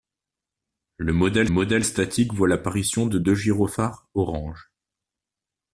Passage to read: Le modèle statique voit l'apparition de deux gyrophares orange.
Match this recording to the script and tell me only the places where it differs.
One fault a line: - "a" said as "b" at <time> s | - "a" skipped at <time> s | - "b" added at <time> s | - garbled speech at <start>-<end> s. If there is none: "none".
- "modèle" added at 1.5 s